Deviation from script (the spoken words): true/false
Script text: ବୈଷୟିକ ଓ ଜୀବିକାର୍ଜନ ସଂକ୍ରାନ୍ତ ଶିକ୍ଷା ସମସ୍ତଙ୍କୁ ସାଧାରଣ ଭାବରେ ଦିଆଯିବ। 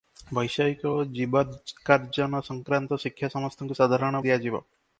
true